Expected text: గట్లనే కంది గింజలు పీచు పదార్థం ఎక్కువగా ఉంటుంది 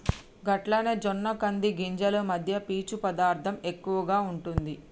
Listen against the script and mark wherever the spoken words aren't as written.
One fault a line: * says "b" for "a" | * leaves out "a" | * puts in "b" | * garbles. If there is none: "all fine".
* puts in "జొన్న"
* puts in "మధ్య"